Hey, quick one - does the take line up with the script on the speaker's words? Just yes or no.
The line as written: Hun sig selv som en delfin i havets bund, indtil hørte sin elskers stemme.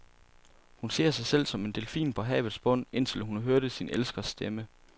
no